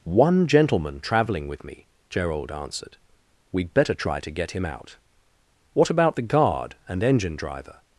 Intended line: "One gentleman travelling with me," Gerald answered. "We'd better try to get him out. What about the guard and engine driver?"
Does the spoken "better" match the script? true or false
true